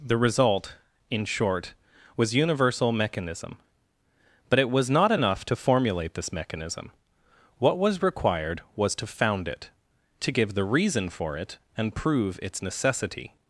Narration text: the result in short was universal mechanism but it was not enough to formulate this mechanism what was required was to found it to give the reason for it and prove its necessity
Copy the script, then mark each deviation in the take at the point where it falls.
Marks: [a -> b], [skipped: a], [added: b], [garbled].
the result in short was universal mechanism but it was not enough to formulate this mechanism what was required was to found it to give the reason for it and prove its necessity